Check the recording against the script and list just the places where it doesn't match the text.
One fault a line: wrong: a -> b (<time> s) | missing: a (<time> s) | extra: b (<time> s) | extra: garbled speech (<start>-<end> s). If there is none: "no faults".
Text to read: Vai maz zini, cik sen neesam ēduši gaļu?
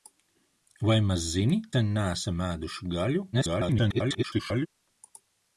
missing: cik (1.6 s)
extra: garbled speech (3.3-4.7 s)